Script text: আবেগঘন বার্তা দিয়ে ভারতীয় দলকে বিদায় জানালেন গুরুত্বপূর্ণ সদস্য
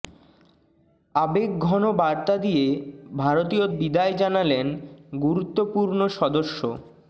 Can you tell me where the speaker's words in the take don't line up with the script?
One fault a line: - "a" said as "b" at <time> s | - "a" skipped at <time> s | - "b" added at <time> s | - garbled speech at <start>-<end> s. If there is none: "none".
- "দলকে" skipped at 3.7 s